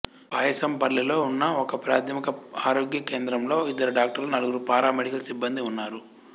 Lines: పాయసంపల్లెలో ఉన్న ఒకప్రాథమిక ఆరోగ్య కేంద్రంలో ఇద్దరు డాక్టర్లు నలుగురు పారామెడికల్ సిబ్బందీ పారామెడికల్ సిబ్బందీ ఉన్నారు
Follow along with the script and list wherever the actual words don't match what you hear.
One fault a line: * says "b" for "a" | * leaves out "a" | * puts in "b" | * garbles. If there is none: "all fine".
* leaves out "పారామెడికల్ సిబ్బందీ"